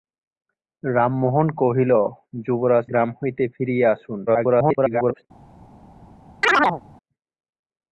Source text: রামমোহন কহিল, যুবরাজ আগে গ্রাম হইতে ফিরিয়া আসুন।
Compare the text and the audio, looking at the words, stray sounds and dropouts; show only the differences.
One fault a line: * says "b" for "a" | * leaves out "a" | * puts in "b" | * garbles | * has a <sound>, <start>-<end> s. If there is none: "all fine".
* leaves out "আগে"
* garbles
* has a chirp, 6.4-6.8 s